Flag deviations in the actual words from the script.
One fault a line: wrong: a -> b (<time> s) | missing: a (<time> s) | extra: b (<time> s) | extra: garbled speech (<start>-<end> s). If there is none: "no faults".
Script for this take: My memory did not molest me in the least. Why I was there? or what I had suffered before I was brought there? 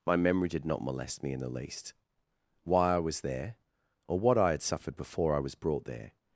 no faults